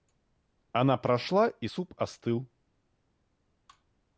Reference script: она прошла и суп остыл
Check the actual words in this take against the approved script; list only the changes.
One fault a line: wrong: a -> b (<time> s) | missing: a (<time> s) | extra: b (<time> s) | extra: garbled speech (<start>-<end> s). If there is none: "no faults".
no faults